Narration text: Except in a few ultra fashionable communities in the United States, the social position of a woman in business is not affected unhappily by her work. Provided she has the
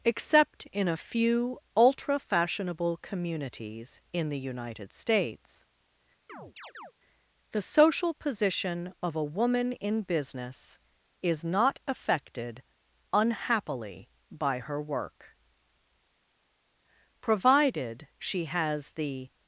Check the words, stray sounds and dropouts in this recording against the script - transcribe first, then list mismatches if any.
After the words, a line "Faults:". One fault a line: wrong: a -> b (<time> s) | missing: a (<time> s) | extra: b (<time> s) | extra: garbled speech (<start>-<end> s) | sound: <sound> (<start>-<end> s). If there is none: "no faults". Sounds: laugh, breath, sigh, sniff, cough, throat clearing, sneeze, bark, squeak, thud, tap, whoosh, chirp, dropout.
Except in a few ultra fashionable communities in the United States, the social position of a woman in business is not affected unhappily by her work. Provided she has the
Faults:
sound: chirp (6.3-6.9 s)